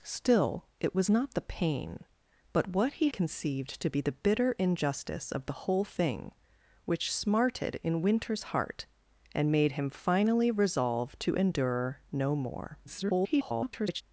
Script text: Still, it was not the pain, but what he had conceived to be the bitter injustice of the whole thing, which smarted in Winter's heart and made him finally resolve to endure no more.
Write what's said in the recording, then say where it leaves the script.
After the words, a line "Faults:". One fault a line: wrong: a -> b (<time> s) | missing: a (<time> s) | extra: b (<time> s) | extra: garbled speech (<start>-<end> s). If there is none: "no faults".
Still, it was not the pain, but what he conceived to be the bitter injustice of the whole thing, which smarted in Winter's heart and made him finally resolve to endure no more. [garbled]
Faults:
missing: had (3.1 s)
extra: garbled speech (12.9-14.0 s)